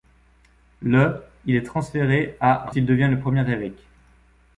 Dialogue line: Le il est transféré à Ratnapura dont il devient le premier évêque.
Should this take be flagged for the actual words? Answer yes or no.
yes